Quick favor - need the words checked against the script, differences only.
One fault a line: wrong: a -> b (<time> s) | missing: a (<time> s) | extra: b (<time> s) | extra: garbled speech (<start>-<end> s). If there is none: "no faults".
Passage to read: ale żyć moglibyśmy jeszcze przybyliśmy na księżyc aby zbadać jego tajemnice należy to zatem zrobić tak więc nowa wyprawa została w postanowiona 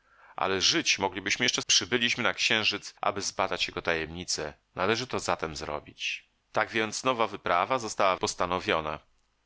no faults